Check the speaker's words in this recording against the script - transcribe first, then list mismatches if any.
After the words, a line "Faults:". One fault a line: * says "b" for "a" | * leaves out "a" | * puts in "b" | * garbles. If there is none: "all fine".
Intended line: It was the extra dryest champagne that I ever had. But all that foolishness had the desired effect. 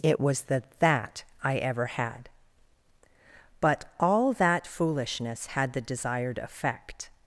It was the that I ever had. But all that foolishness had the desired effect.
Faults:
* leaves out "extra dryest champagne"